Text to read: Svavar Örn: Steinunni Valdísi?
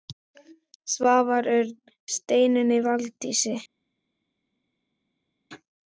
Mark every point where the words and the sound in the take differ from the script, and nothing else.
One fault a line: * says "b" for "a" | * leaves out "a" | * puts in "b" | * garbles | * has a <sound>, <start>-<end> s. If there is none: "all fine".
all fine